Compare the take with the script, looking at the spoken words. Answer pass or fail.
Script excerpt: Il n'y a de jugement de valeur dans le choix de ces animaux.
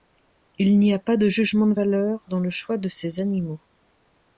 fail